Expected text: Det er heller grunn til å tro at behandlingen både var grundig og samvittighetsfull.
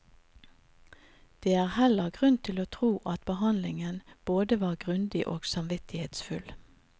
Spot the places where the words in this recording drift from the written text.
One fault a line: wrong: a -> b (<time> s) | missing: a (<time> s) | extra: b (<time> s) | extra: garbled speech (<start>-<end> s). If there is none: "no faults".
no faults